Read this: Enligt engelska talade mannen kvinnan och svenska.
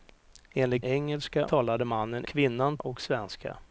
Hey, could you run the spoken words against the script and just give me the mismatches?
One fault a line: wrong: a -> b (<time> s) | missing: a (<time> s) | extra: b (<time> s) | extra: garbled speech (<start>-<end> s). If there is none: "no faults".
no faults